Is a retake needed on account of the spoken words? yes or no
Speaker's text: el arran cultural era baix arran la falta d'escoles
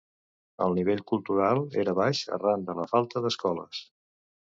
yes